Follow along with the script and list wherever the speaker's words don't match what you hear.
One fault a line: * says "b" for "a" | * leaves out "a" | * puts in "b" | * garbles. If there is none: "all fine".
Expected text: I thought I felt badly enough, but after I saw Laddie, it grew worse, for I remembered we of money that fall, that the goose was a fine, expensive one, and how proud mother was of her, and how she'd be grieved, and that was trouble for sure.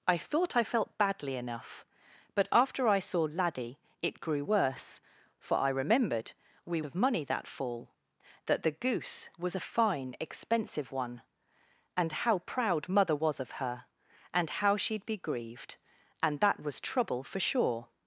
all fine